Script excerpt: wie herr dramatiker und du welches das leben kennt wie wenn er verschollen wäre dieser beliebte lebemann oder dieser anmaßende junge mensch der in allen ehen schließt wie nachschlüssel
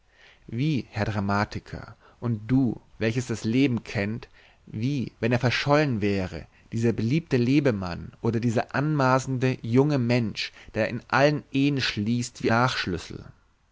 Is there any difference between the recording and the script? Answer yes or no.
no